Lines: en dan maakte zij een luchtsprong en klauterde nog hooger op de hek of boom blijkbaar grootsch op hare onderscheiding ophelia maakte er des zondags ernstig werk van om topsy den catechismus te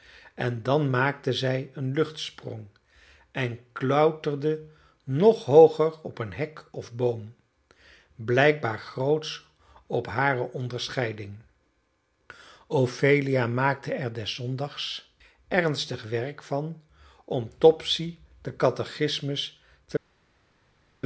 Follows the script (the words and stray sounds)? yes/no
no